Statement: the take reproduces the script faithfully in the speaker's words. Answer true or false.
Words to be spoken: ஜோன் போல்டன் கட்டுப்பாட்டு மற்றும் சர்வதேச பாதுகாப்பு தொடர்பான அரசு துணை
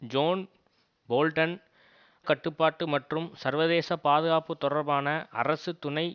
true